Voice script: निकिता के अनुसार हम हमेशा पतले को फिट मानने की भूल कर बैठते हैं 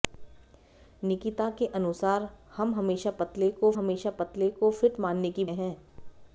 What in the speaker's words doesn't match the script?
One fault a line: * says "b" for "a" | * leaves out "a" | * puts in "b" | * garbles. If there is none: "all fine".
* puts in "हमेशा पतले को"
* leaves out "भूल कर बैठते"